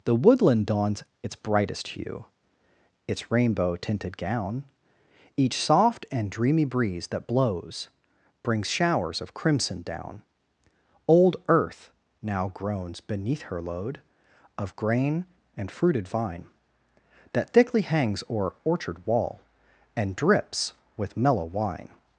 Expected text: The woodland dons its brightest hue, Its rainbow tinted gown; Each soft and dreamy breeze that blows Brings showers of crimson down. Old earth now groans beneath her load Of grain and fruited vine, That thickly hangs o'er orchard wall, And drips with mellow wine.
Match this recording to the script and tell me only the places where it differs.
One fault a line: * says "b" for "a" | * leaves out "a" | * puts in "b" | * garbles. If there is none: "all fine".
all fine